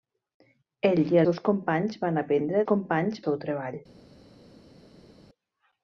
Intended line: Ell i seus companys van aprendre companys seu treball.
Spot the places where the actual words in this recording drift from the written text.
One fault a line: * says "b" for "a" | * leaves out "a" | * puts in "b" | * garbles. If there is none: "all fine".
all fine